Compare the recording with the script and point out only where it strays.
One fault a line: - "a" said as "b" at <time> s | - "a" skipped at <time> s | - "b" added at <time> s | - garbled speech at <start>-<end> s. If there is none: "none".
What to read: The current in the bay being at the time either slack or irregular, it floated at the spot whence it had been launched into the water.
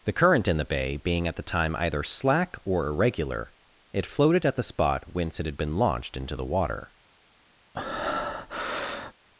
none